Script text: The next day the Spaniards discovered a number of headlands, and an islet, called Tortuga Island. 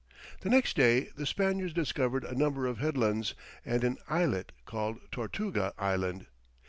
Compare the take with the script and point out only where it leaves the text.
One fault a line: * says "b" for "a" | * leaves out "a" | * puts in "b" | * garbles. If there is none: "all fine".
all fine